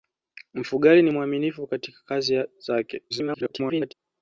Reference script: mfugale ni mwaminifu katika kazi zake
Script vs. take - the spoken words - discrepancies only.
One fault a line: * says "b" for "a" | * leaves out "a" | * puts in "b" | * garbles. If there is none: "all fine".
* garbles